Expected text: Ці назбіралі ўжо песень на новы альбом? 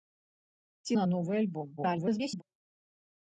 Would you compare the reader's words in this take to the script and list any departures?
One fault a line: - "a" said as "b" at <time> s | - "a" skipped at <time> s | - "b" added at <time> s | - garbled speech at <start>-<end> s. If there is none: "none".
- "назбіралі ўжо песень" skipped at 0.9 s
- garbled speech at 1.8-2.4 s